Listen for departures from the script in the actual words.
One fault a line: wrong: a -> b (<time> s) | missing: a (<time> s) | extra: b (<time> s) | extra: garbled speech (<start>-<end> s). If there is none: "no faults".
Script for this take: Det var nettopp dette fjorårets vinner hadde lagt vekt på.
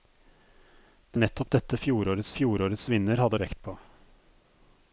missing: var (1.2 s)
extra: fjorårets (2.3 s)
missing: lagt (3.4 s)